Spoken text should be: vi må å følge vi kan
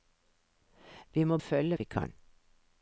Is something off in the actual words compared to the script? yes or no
no